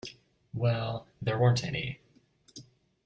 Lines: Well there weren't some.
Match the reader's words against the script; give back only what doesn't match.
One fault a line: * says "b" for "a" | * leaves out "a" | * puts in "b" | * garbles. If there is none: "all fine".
* says "any" for "some"